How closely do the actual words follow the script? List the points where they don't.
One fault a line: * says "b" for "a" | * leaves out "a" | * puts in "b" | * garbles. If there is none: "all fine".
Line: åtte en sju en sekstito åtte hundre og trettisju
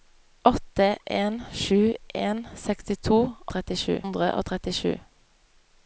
* says "trettisju" for "åtte"